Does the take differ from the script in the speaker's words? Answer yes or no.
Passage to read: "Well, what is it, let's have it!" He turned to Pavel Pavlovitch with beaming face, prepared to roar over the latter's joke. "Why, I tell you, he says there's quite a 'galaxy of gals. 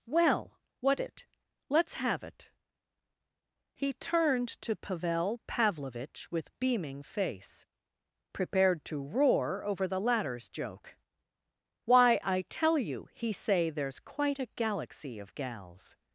yes